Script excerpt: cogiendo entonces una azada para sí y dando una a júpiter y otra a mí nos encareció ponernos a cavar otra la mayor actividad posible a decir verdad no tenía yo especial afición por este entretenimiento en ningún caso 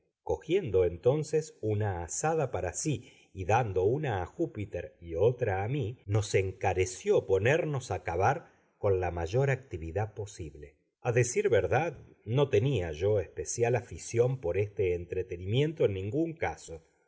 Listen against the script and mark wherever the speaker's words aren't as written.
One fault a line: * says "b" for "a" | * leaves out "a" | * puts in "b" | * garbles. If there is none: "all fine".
* says "con" for "otra"